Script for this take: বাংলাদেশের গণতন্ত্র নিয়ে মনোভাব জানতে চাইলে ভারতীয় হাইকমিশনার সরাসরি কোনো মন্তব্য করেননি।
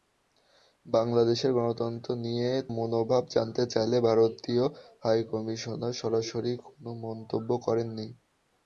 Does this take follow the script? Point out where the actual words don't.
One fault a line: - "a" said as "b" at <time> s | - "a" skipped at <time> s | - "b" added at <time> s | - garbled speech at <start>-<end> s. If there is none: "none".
none